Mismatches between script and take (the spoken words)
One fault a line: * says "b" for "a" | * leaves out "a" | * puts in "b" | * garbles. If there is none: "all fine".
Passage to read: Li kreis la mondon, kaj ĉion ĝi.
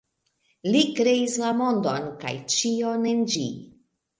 * puts in "en"